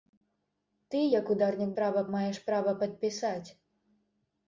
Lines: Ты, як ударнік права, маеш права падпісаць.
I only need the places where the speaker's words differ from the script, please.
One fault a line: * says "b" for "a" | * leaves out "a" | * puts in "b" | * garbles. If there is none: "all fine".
all fine